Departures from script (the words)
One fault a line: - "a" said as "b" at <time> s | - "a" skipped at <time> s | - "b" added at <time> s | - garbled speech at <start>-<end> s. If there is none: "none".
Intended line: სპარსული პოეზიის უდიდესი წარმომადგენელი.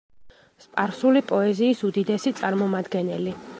none